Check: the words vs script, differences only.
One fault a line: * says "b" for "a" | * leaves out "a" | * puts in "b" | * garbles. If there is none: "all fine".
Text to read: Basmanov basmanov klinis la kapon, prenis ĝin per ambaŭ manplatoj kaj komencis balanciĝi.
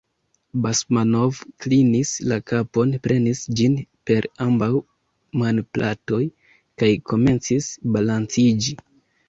* leaves out "basmanov"